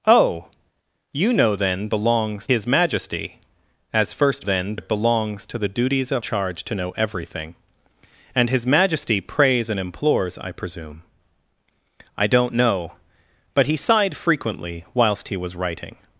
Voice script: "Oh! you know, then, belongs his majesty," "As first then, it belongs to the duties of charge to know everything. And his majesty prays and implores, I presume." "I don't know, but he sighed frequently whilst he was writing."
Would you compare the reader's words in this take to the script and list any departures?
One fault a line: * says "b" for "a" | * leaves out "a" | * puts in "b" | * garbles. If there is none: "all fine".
all fine